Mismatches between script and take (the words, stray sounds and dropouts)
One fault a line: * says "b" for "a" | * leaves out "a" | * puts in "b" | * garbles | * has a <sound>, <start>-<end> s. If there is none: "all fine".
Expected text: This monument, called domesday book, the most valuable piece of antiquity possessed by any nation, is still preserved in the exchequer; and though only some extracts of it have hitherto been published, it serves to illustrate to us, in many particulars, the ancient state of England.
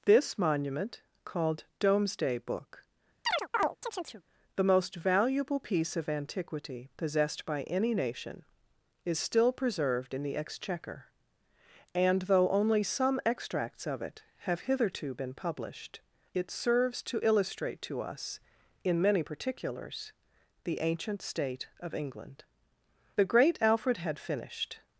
* has a chirp, 3.3-4.2 s
* puts in "The great Alfred had finished"